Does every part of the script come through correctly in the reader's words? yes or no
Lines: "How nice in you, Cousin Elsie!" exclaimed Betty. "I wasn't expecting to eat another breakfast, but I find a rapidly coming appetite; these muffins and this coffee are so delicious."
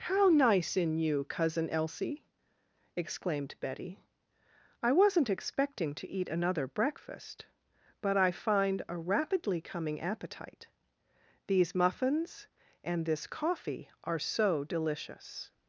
yes